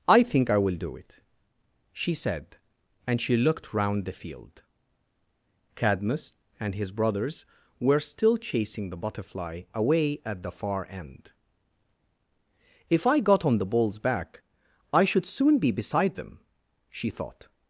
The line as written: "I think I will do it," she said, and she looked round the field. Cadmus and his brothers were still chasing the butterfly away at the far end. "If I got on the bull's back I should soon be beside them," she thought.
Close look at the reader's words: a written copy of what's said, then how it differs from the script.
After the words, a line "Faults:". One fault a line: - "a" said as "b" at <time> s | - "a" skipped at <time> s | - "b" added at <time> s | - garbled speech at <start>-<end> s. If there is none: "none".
"I think I will do it," she said, and she looked round the field. Cadmus and his brothers were still chasing the butterfly away at the far end. "If I got on the bull's back I should soon be beside them," she thought.
Faults:
none